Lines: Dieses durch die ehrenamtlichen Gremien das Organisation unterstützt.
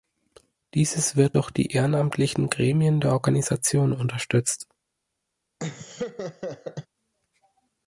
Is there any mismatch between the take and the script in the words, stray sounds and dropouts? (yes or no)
yes